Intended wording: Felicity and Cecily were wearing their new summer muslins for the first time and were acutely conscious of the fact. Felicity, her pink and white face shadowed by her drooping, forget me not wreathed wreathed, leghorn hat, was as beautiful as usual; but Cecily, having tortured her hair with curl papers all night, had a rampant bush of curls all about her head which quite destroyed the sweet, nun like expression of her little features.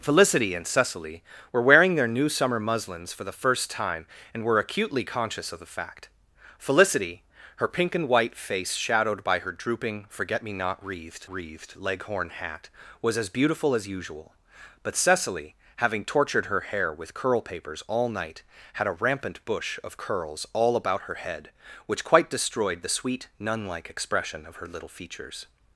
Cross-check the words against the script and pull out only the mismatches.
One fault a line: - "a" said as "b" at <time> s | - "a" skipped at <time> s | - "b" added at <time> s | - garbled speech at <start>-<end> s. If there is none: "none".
none